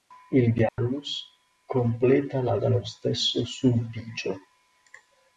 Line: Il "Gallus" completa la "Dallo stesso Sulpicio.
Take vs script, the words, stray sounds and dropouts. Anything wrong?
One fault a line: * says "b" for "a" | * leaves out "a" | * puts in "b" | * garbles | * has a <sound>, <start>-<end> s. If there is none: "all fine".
* has a dropout, 0.7-0.8 s